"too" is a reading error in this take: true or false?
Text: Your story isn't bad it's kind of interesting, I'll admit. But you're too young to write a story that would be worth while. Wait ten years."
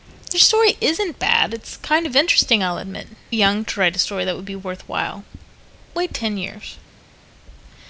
true